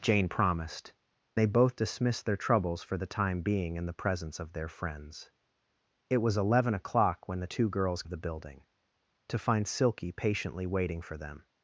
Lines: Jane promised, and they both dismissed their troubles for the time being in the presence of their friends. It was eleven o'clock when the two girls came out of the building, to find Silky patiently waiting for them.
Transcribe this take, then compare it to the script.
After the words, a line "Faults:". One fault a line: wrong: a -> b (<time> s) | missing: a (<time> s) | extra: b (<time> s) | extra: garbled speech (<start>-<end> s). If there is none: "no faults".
Jane promised, they both dismissed their troubles for the time being in the presence of their friends. It was eleven o'clock when the two girls of the building, to find Silky patiently waiting for them.
Faults:
missing: and (0.9 s)
missing: came out (8.0 s)